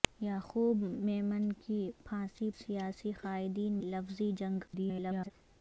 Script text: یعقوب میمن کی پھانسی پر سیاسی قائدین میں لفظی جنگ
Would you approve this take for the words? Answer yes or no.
no